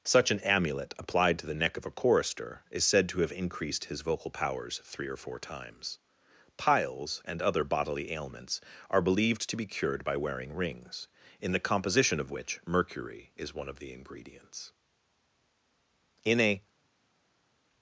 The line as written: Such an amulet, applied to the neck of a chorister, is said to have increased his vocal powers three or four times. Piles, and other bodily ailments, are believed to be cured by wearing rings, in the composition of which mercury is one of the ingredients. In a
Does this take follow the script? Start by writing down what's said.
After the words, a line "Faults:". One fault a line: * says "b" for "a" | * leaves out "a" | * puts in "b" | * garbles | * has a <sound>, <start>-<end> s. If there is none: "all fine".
Such an amulet, applied to the neck of a chorister, is said to have increased his vocal powers three or four times. Piles, and other bodily ailments, are believed to be cured by wearing rings, in the composition of which mercury is one of the ingredients. In a
Faults:
all fine